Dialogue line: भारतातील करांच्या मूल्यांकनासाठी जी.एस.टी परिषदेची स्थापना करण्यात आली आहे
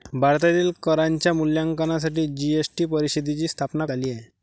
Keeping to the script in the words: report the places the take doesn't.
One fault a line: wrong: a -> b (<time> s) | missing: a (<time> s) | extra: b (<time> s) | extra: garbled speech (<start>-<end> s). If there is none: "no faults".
missing: करण्यात (3.9 s)